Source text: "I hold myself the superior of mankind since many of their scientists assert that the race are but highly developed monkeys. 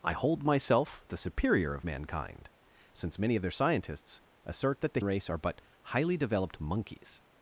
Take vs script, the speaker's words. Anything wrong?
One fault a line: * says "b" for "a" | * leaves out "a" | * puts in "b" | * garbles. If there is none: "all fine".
all fine